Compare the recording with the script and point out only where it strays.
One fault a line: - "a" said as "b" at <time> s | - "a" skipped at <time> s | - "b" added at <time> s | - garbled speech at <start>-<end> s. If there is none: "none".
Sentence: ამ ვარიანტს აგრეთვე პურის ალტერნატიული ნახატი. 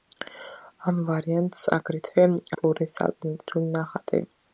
none